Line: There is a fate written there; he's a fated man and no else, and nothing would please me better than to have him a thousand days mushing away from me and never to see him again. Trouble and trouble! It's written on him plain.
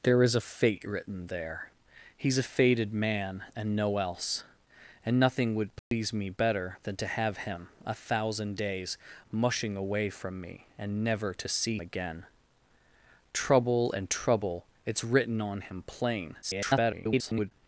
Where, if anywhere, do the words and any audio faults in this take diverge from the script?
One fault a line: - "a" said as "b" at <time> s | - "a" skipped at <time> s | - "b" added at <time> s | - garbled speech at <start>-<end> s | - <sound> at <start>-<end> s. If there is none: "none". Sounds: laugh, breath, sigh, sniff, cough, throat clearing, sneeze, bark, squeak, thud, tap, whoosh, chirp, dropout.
- dropout at 5.8-5.9 s
- "him" skipped at 11.8 s
- garbled speech at 16.4-17.5 s